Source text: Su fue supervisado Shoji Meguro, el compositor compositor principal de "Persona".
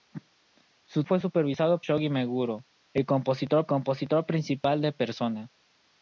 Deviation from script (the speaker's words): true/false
false